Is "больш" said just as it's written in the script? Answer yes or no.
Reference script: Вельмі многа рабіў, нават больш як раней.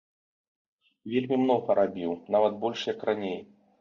yes